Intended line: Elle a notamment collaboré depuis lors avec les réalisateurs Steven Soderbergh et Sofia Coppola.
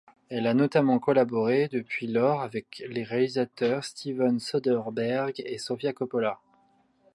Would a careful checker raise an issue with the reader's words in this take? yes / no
no